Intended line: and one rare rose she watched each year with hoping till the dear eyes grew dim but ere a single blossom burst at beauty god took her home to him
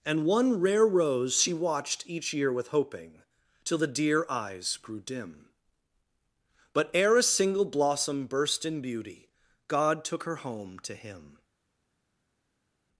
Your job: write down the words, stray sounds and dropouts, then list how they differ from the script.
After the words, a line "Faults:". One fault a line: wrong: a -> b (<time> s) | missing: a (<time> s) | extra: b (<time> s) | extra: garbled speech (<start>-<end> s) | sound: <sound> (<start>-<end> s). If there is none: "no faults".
and one rare rose she watched each year with hoping till the dear eyes grew dim but ere a single blossom burst in beauty god took her home to him
Faults:
wrong: at -> in (8.7 s)